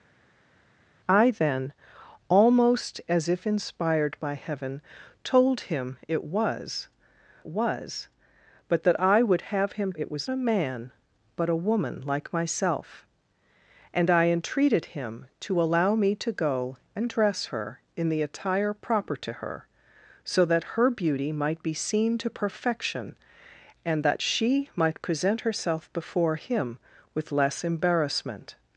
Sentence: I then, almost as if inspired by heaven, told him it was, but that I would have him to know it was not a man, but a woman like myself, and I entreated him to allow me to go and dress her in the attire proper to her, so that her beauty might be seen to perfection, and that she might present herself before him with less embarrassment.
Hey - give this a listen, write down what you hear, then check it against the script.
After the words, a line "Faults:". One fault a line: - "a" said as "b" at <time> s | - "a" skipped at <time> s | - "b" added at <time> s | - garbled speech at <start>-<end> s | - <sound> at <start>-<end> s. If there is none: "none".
I then, almost as if inspired by heaven, told him it was was, but that I would have him it was a man, but a woman like myself, and I entreated him to allow me to go and dress her in the attire proper to her, so that her beauty might be seen to perfection, and that she might present herself before him with less embarrassment.
Faults:
- "was" added at 7.5 s
- "to know" skipped at 9.9 s
- "not" skipped at 10.3 s